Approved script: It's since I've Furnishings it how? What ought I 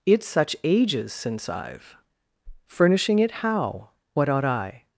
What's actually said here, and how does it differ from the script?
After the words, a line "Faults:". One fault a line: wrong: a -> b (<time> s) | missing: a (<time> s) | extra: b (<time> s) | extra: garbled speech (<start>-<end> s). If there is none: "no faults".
It's such ages since I've Furnishing it how? What ought I
Faults:
extra: such ages (0.3 s)
wrong: Furnishings -> Furnishing (2.7 s)